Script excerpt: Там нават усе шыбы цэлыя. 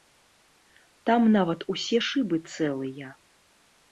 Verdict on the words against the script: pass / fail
pass